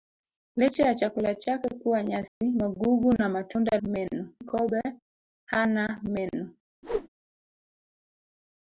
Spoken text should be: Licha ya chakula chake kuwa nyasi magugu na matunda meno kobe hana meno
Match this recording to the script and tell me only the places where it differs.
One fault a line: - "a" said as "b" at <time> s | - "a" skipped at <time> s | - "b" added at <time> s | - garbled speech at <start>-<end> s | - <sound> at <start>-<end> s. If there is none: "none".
- dropout at 2.3-2.4 s
- whoosh at 6.8-7.1 s